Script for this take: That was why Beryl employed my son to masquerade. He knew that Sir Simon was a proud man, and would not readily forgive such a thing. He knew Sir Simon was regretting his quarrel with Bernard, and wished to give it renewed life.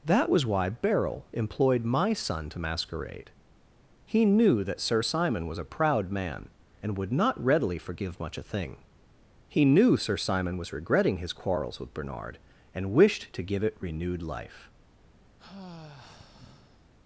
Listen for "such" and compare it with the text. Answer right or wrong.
wrong